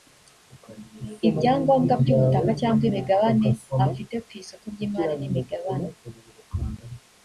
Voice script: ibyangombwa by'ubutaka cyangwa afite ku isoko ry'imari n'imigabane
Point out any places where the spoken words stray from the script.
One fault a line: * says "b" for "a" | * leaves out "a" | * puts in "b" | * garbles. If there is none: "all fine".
* puts in "imigabane"